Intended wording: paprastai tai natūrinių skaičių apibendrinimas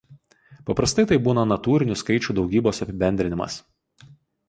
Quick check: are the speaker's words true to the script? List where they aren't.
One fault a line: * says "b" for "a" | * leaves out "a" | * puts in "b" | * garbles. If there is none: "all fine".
* puts in "būna"
* puts in "daugybos"